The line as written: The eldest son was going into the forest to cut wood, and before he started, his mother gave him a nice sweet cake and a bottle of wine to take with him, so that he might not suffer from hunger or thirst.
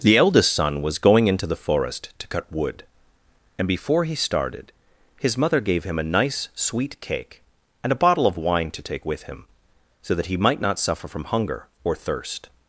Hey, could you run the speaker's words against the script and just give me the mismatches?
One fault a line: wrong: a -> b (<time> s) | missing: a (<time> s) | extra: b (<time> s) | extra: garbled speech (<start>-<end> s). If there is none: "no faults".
no faults